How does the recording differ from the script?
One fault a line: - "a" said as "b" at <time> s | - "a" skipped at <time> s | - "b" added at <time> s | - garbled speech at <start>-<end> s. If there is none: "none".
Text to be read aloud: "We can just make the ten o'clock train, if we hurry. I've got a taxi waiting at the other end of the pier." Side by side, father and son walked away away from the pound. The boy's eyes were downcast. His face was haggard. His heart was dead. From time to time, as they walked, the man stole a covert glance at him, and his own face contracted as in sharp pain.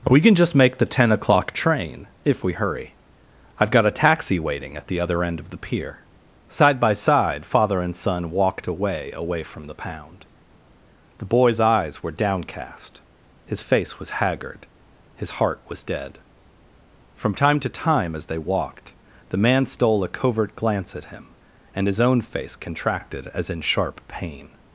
none